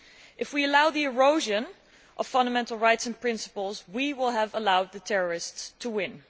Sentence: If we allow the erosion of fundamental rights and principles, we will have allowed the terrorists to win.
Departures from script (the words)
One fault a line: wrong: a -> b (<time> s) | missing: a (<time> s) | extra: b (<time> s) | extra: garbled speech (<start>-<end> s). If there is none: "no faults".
no faults